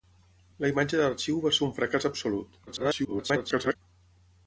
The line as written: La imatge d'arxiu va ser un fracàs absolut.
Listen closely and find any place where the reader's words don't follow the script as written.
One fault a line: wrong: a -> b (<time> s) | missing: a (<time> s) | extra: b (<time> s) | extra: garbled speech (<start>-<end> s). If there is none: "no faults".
extra: garbled speech (2.7-3.8 s)